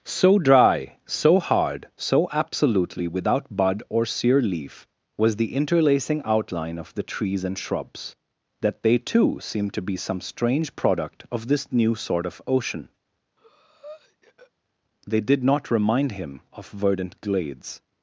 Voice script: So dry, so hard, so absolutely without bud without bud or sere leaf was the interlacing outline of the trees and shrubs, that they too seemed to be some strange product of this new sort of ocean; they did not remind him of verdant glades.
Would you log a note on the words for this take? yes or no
yes